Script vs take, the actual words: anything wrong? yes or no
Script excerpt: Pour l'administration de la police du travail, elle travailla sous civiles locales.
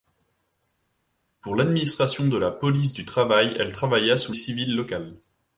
no